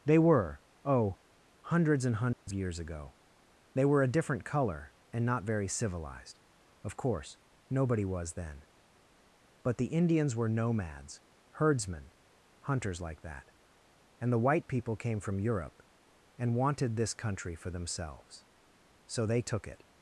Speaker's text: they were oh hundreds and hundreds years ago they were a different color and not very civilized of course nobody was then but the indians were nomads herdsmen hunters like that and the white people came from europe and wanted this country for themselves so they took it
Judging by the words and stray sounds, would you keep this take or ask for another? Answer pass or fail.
fail